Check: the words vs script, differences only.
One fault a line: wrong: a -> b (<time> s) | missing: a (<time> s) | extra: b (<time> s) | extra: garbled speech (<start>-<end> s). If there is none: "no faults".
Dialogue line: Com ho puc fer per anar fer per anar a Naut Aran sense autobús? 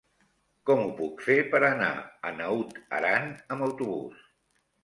missing: fer per anar (1.9 s)
wrong: sense -> amb (3.6 s)